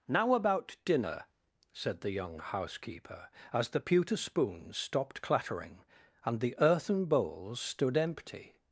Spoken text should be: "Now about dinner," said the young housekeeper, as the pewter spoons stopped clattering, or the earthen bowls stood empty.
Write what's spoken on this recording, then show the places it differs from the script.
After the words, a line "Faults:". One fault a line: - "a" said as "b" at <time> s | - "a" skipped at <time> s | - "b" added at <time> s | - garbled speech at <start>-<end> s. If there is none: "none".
"Now about dinner," said the young housekeeper, as the pewter spoons stopped clattering, and the earthen bowls stood empty.
Faults:
- "or" said as "and" at 6.2 s